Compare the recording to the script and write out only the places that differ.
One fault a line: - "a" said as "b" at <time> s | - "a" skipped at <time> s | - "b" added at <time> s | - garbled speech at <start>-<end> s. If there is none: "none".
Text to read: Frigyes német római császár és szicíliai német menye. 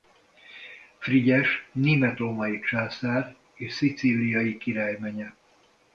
- "német" said as "király" at 4.6 s